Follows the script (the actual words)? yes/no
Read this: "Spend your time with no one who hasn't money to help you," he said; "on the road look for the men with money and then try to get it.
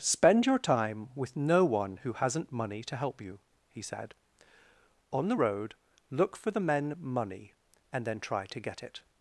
no